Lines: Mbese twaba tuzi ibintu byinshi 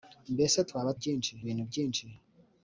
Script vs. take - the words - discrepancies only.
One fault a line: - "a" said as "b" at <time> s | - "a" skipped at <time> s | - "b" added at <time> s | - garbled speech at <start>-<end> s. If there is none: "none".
- "tuzi" said as "byinshi" at 1.0 s